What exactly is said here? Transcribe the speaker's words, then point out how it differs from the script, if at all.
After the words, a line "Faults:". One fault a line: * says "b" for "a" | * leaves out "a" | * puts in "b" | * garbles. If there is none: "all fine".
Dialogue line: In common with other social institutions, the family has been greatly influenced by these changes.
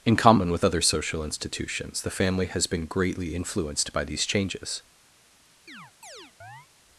In common with other social institutions, the family has been greatly influenced by these changes.
Faults:
all fine